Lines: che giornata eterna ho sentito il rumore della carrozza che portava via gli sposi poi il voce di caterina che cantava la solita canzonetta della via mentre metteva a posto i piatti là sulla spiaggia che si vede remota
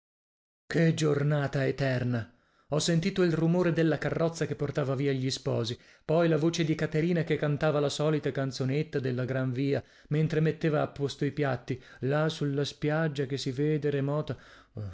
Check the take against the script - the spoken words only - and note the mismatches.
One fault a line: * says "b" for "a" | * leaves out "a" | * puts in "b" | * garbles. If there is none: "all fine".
* says "la" for "il"
* puts in "gran"